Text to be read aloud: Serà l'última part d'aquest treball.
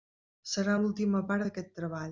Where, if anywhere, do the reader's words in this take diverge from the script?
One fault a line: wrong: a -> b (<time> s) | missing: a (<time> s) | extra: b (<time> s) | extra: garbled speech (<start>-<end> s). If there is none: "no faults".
no faults